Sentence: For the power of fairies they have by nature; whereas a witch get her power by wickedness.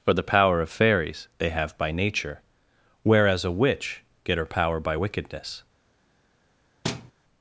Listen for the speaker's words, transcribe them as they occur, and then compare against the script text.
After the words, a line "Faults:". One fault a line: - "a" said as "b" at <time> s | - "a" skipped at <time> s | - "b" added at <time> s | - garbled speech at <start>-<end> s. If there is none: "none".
For the power of fairies they have by nature; whereas a witch get her power by wickedness.
Faults:
none